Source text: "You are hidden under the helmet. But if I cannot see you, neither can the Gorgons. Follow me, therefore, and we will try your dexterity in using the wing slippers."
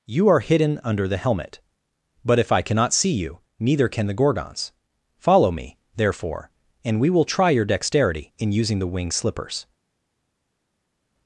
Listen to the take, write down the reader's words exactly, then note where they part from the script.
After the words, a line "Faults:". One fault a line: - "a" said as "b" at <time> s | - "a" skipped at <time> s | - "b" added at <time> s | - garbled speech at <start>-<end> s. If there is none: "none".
"You are hidden under the helmet. But if I cannot see you, neither can the Gorgons. Follow me, therefore, and we will try your dexterity in using the wing slippers."
Faults:
none